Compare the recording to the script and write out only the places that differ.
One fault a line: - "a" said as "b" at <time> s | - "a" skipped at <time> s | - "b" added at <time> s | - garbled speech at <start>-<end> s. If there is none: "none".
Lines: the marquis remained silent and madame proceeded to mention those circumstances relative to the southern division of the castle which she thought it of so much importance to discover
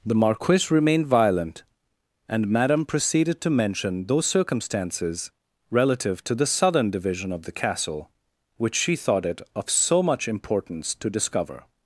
- "silent" said as "violent" at 1.1 s